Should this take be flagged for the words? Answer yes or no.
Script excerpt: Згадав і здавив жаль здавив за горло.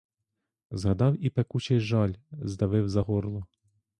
yes